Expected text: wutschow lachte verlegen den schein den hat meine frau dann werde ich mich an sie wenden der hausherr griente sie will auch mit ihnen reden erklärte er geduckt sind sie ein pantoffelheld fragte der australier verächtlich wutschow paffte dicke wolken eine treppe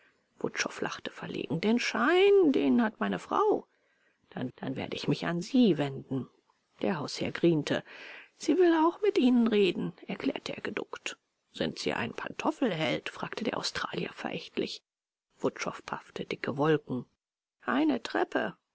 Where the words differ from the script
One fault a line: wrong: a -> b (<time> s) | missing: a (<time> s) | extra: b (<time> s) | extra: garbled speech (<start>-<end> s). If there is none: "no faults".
extra: dann (4.6 s)